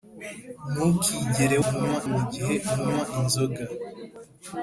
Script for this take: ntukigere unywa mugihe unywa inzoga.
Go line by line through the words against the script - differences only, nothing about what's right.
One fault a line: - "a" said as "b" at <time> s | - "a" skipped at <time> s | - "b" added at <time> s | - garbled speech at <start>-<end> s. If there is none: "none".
none